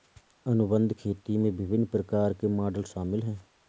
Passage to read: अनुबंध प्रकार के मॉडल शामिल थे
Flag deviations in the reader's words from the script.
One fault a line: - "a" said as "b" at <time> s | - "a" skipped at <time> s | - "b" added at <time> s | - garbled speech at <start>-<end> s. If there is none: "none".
- "खेती में विभिन्न" added at 1.0 s
- "थे" said as "हैं" at 3.2 s